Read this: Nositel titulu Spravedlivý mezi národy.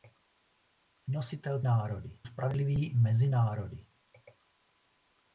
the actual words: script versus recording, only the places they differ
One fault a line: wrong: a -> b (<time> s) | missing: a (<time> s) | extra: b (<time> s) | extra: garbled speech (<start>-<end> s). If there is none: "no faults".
wrong: titulu -> národy (1.6 s)